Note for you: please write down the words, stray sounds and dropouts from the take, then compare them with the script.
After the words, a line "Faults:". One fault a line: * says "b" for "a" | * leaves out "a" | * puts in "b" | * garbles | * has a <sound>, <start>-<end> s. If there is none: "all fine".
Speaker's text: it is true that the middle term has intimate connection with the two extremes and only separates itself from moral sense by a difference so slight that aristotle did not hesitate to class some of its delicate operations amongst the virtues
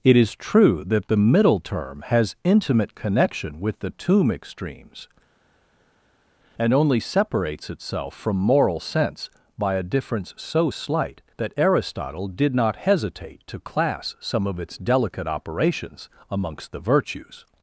it is true that the middle term has intimate connection with the tomb extremes and only separates itself from moral sense by a difference so slight that aristotle did not hesitate to class some of its delicate operations amongst the virtues
Faults:
* says "tomb" for "two"